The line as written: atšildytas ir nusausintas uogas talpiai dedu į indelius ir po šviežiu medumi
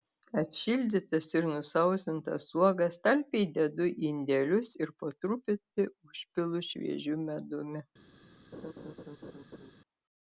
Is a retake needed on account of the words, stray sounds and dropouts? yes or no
yes